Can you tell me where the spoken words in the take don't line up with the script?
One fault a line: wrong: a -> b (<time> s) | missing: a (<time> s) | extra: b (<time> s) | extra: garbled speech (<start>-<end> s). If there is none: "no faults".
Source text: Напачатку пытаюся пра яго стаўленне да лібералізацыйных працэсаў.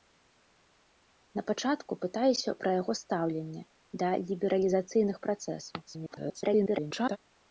extra: garbled speech (5.9-7.2 s)